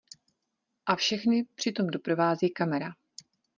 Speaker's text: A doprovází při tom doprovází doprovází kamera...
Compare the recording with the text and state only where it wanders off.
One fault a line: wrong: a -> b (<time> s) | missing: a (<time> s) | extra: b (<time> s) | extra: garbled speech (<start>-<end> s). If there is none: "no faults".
wrong: doprovází -> všechny (0.9 s)
missing: doprovází (2.5 s)